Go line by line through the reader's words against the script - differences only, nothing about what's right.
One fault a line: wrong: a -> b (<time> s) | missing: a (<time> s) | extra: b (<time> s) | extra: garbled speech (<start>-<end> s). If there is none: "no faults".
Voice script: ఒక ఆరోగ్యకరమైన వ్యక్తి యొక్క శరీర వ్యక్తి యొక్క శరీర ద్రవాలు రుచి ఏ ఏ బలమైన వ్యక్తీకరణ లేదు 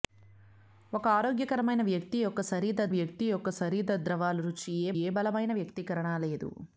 no faults